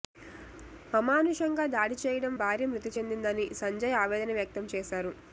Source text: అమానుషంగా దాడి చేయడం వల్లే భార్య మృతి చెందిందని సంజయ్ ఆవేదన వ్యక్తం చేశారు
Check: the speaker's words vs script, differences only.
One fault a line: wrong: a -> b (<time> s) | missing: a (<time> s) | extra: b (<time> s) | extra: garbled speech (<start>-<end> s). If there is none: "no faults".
missing: వల్లే (2.3 s)